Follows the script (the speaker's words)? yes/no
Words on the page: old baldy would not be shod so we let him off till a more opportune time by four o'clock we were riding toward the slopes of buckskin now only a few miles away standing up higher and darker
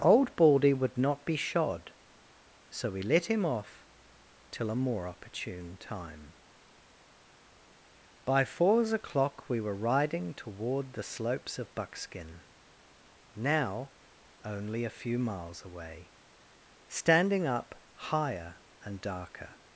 no